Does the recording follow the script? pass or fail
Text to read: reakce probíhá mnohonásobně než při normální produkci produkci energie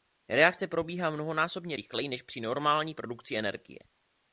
fail